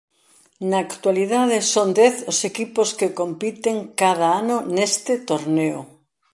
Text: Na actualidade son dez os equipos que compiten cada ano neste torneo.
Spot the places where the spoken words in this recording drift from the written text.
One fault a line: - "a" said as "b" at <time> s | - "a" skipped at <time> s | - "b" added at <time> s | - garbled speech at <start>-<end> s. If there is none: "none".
none